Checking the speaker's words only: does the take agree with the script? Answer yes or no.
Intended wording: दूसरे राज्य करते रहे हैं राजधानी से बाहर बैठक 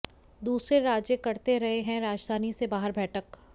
yes